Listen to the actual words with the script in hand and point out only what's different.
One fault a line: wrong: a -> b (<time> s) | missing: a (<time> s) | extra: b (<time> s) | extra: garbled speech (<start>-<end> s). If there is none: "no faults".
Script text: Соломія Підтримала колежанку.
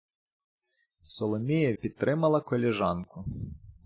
no faults